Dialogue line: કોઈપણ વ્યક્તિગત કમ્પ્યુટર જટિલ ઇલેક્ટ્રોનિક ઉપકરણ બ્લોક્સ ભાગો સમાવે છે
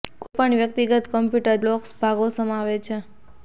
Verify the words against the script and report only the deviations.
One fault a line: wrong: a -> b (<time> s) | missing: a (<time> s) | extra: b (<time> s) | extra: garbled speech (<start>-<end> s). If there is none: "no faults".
missing: જટિલ ઇલેક્ટ્રોનિક ઉપકરણ (1.6 s)